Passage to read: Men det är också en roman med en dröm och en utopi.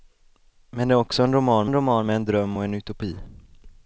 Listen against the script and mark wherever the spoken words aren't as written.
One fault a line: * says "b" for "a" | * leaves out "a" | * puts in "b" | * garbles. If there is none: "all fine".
* puts in "en roman"